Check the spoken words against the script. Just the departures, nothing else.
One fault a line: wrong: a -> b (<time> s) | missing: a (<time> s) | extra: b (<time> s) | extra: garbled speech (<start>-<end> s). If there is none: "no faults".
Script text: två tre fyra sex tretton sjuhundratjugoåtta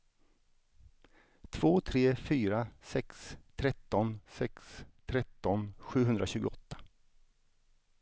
extra: sex tretton (4.3 s)